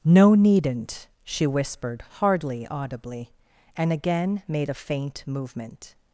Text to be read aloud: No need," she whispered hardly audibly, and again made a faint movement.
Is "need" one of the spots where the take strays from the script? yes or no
yes